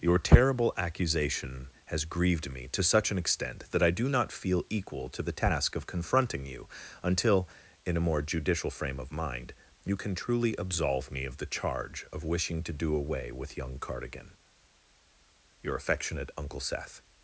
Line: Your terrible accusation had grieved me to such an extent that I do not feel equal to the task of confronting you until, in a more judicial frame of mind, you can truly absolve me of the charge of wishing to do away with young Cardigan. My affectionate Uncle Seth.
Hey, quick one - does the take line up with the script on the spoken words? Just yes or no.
no